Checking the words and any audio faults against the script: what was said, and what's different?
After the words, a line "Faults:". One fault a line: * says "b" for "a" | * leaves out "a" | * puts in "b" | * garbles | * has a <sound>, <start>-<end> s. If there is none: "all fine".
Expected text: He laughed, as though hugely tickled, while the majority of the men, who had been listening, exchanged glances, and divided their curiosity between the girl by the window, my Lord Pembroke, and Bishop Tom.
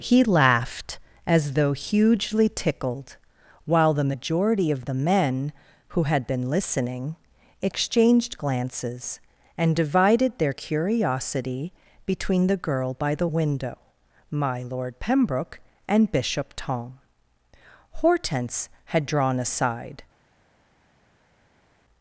He laughed, as though hugely tickled, while the majority of the men, who had been listening, exchanged glances, and divided their curiosity between the girl by the window, my Lord Pembroke, and Bishop Tom. Hortense had drawn aside
Faults:
* puts in "Hortense had drawn aside"